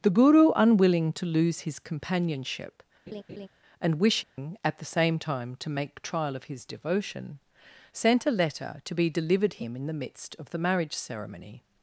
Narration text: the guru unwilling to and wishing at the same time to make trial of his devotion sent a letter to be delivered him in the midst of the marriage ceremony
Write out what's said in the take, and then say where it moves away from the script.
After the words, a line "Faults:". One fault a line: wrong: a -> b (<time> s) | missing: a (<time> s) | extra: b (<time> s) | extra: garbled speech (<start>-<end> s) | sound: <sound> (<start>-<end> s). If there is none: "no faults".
the guru unwilling to lose his companionship and wishing at the same time to make trial of his devotion sent a letter to be delivered him in the midst of the marriage ceremony
Faults:
extra: lose his companionship (1.3 s)
sound: laugh (3.1-3.5 s)
sound: dropout (4.2-4.4 s)